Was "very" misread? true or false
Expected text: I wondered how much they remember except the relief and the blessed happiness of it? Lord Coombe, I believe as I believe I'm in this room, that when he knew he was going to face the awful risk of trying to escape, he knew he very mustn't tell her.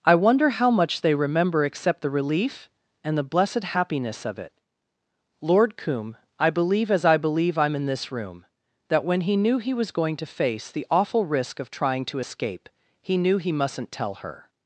true